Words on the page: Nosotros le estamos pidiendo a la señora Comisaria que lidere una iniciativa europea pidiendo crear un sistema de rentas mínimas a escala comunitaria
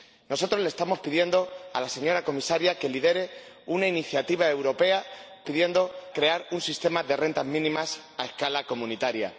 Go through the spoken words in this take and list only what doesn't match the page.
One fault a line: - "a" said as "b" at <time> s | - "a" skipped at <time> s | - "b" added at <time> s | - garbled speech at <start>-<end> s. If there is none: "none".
none